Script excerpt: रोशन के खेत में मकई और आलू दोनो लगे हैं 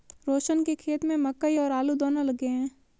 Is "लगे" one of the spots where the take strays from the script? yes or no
no